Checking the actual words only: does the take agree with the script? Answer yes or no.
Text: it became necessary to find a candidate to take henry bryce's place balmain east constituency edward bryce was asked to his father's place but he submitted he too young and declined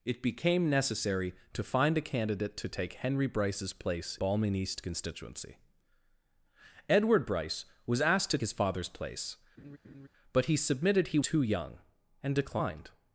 yes